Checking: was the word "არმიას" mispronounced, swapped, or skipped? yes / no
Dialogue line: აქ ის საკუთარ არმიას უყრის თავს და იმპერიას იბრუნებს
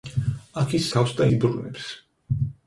yes